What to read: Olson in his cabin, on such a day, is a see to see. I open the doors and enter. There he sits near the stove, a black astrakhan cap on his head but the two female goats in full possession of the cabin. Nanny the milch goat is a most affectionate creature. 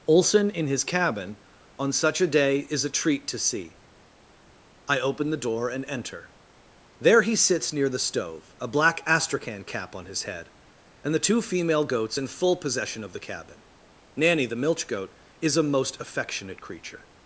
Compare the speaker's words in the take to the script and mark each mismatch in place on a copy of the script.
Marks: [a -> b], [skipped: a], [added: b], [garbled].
Olson in his cabin, on such a day, is a [see -> treat] to see. I open the [doors -> door] and enter. There he sits near the stove, a black astrakhan cap on his head [but -> and] the two female goats in full possession of the cabin. Nanny the milch goat is a most affectionate creature.